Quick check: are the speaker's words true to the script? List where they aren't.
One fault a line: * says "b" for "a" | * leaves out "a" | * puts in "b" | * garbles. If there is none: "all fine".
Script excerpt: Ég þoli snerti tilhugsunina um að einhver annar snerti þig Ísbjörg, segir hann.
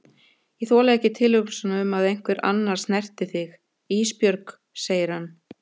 * says "ekki" for "snerti"